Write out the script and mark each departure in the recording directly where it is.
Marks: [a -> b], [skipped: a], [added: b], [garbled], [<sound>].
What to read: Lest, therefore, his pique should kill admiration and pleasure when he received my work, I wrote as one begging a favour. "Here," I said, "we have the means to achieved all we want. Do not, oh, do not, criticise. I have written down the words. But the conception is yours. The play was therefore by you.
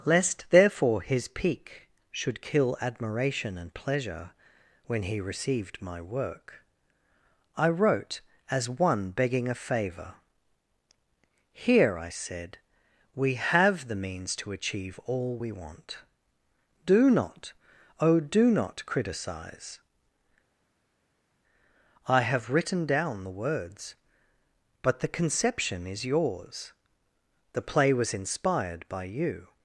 Lest, therefore, his pique should kill admiration and pleasure when he received my work, I wrote as one begging a favour. "Here," I said, "we have the means to [achieved -> achieve] all we want. Do not, oh, do not, criticise. I have written down the words. But the conception is yours. The play was [therefore -> inspired] by you.